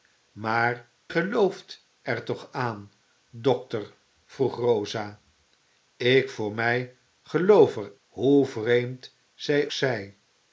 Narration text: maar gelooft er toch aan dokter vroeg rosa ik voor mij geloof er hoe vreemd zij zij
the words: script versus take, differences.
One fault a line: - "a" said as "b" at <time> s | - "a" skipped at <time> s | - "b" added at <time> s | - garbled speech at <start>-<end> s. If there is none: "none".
none